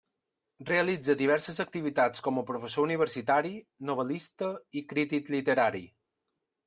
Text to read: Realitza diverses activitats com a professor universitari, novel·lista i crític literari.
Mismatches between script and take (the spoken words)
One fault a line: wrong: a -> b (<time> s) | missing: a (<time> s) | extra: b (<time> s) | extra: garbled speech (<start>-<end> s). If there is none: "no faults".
no faults